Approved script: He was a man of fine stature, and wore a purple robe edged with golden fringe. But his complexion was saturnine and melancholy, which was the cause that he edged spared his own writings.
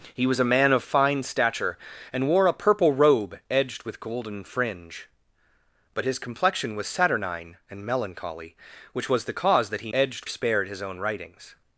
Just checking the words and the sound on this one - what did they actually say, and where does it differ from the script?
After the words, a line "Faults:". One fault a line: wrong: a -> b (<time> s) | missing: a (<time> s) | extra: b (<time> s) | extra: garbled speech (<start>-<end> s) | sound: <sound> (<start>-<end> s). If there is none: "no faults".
He was a man of fine stature, and wore a purple robe edged with golden fringe. But his complexion was saturnine and melancholy, which was the cause that he edged spared his own writings.
Faults:
no faults